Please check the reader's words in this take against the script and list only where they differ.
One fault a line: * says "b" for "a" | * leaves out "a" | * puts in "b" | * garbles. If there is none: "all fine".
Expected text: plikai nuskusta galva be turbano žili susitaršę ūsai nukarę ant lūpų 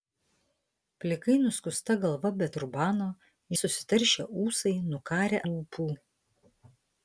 * leaves out "žili"
* leaves out "ant"